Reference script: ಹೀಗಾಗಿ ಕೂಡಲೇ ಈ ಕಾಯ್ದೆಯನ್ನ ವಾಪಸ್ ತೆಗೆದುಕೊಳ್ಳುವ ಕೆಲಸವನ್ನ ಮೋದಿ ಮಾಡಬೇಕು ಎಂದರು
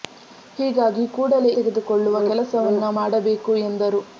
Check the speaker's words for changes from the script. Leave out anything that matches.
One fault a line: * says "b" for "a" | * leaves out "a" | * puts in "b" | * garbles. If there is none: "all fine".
* leaves out "ಈ ಕಾಯ್ದೆಯನ್ನ ವಾಪಸ್"
* leaves out "ಮೋದಿ"